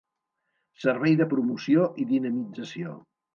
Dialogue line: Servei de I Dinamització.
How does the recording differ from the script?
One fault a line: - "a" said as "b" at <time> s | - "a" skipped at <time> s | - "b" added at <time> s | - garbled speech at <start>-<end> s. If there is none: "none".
- "Promoció" added at 1.3 s